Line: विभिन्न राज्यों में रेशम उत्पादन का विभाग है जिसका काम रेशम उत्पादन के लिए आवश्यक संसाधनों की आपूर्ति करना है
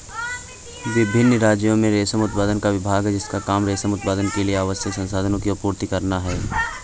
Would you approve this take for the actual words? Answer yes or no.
yes